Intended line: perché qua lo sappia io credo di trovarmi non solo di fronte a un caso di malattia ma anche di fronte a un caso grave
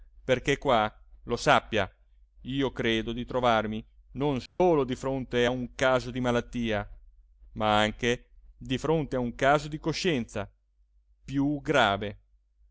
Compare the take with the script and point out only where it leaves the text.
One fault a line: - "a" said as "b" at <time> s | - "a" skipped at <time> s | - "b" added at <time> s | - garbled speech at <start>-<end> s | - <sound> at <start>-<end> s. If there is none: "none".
- dropout at 4.5-4.6 s
- "di coscienza più" added at 9.7 s